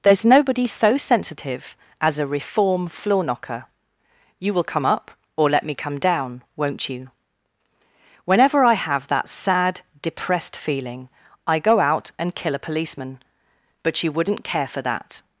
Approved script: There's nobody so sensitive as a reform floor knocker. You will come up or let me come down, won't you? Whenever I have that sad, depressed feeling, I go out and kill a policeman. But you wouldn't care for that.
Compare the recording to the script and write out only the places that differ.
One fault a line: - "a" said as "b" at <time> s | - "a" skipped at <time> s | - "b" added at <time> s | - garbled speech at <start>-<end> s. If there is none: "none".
none